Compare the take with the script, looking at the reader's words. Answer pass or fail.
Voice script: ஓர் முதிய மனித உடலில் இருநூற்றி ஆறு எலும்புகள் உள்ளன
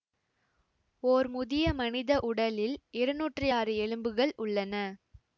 pass